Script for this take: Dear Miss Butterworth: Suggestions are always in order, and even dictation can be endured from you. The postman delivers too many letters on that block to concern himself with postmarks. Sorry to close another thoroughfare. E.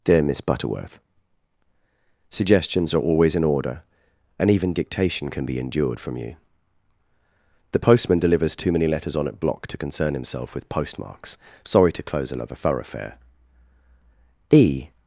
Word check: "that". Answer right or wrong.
wrong